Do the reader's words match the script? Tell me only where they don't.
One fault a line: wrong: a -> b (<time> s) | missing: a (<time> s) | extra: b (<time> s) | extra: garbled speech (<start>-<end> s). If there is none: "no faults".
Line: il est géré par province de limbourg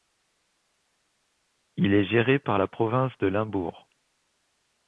extra: la (2.6 s)